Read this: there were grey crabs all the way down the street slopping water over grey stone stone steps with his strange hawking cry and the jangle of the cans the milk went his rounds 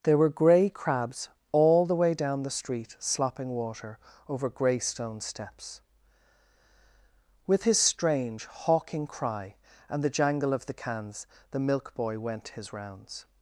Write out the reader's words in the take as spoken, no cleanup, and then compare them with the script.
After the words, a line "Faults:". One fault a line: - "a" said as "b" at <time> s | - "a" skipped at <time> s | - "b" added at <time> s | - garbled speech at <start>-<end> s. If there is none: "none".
there were grey crabs all the way down the street slopping water over grey stone steps with his strange hawking cry and the jangle of the cans the milk boy went his rounds
Faults:
- "stone" skipped at 5.2 s
- "boy" added at 11.9 s